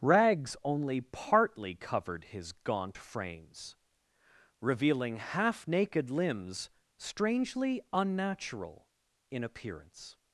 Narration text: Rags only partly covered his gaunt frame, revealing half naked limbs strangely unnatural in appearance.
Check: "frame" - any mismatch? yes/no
yes